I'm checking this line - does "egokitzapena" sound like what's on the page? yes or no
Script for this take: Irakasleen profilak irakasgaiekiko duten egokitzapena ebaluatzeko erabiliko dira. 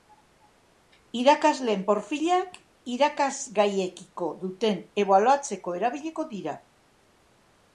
no